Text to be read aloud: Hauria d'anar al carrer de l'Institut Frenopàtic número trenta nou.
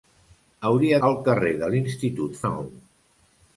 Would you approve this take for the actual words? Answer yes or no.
no